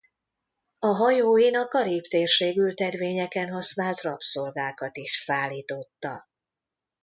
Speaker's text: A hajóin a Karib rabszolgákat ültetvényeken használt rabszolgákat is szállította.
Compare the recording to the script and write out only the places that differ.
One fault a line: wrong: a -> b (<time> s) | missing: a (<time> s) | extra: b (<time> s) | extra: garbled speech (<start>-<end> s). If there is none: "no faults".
wrong: rabszolgákat -> térség (2.0 s)